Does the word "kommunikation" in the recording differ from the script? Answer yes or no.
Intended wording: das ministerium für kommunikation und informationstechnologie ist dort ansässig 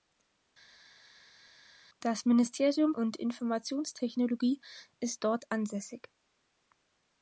yes